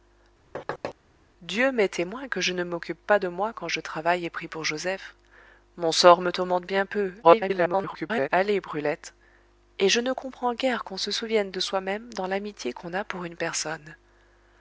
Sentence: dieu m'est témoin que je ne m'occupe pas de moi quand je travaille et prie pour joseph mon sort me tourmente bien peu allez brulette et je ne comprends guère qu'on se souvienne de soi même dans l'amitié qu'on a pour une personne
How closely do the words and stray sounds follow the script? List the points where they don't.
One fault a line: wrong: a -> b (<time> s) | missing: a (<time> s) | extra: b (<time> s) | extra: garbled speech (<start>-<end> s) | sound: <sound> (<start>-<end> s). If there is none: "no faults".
sound: thud (0.5-0.9 s)
extra: garbled speech (7.2-8.3 s)